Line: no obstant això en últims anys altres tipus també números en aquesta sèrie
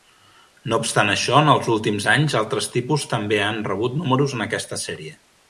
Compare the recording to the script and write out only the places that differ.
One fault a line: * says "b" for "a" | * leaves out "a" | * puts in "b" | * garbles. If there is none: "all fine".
* puts in "els"
* puts in "han rebut"